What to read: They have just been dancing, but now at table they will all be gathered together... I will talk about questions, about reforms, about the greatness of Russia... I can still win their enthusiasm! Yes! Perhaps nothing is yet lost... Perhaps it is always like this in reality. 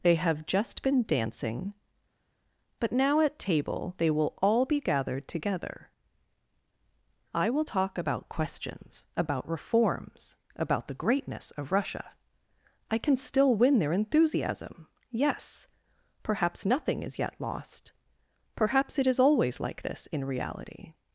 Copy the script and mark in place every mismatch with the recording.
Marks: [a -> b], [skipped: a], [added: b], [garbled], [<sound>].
They have just been dancing, but now at table they will all be gathered together... I will talk about questions, about reforms, about the greatness of Russia... I can still win their enthusiasm! Yes! Perhaps nothing is yet lost... Perhaps it is always like this in reality.